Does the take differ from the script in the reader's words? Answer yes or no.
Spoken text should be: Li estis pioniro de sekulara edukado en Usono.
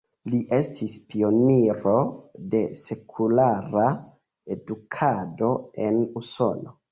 no